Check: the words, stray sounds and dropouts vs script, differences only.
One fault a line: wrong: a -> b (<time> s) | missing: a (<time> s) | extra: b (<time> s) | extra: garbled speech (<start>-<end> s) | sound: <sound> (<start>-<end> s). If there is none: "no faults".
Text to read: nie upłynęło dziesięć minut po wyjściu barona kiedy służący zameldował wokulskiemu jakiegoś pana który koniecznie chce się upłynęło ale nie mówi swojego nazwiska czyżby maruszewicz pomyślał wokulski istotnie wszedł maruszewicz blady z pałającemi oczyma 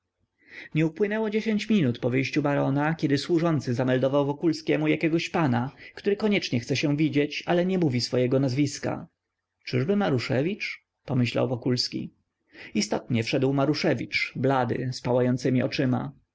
wrong: upłynęło -> widzieć (7.0 s)